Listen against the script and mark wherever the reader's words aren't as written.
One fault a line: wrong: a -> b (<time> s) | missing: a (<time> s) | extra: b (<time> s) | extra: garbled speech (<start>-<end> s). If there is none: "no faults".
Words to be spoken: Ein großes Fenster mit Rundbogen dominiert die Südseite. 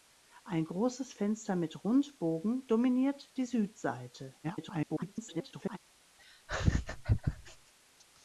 extra: garbled speech (4.4-5.8 s)